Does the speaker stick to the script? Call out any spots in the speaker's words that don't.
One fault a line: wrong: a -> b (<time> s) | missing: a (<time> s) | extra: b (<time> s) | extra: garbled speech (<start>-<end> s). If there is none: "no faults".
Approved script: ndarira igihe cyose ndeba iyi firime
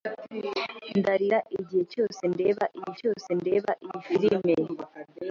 extra: cyose ndeba iyi (3.0 s)